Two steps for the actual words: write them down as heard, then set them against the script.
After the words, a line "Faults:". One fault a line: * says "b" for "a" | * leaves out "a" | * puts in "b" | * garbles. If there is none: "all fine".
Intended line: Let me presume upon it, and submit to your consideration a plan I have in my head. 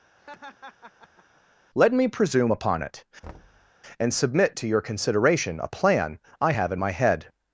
Let me presume upon it, and submit to your consideration a plan I have in my head.
Faults:
all fine